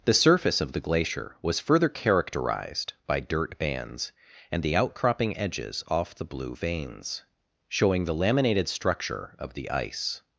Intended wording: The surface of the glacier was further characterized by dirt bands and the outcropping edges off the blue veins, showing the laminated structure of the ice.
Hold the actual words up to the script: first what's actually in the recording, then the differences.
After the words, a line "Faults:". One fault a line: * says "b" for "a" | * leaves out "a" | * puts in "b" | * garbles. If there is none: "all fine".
The surface of the glacier was further characterized by dirt bands and the outcropping edges off the blue veins, showing the laminated structure of the ice.
Faults:
all fine